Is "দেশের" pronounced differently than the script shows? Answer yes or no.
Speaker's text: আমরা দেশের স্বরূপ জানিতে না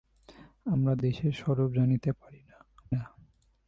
no